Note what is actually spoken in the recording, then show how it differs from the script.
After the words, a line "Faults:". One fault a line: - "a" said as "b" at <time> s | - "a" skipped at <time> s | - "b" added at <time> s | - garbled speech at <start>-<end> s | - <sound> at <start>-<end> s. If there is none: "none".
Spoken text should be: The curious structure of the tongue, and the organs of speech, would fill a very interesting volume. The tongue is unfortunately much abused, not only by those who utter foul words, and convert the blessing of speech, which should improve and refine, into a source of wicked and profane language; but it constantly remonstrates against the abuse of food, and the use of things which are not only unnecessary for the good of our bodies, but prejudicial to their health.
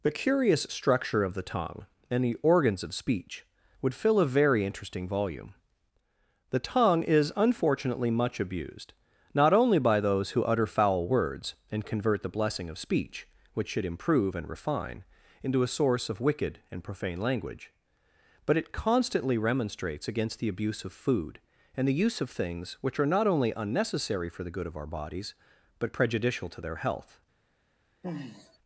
The curious structure of the tongue, and the organs of speech, would fill a very interesting volume. The tongue is unfortunately much abused, not only by those who utter foul words, and convert the blessing of speech, which should improve and refine, into a source of wicked and profane language; but it constantly remonstrates against the abuse of food, and the use of things which are not only unnecessary for the good of our bodies, but prejudicial to their health.
Faults:
- sigh at 28.0-28.6 s